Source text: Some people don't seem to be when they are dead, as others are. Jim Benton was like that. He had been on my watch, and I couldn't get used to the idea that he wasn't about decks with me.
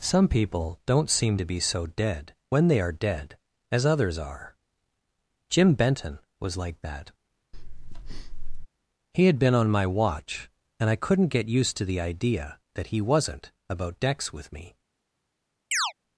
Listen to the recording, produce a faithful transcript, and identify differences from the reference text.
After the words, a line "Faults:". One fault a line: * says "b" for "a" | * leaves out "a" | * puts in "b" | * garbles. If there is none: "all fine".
Some people don't seem to be so dead, when they are dead, as others are. Jim Benton was like that. He had been on my watch, and I couldn't get used to the idea that he wasn't about decks with me.
Faults:
* puts in "so dead"